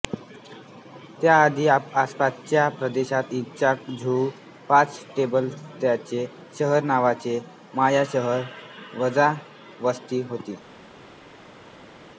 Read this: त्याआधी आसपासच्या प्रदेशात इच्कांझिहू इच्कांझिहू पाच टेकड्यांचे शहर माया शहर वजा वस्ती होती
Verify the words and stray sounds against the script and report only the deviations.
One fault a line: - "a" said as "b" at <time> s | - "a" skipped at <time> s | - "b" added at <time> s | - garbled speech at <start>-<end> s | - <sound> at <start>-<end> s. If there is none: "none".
- "इच्कांझिहू" skipped at 4.3 s
- "नावाचे" added at 6.8 s